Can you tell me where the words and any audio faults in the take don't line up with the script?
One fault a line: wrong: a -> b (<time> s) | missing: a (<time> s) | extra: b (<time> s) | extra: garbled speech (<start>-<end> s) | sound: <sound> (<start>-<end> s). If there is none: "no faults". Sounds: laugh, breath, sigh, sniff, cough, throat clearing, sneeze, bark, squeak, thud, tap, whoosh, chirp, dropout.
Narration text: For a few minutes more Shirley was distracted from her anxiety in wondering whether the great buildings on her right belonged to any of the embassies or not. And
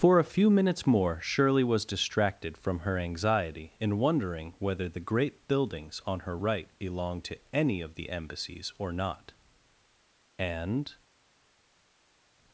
no faults